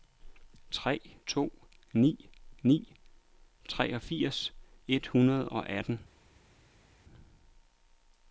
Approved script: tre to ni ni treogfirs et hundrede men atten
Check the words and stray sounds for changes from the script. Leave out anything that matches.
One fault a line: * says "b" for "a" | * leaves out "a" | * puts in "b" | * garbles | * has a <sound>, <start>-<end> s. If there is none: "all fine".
* says "og" for "men"